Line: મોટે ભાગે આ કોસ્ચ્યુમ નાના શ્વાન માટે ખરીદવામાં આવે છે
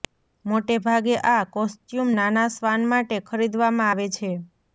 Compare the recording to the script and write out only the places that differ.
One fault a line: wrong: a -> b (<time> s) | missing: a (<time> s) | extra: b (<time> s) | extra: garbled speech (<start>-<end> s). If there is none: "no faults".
no faults